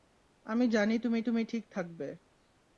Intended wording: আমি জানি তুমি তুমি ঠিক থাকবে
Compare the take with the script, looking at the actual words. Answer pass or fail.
pass